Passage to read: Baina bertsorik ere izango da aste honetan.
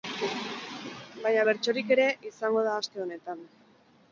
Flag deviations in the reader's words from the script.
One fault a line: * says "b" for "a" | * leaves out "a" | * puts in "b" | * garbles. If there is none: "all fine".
all fine